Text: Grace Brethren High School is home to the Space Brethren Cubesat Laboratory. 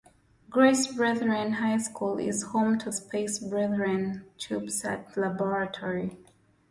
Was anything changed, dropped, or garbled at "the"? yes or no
yes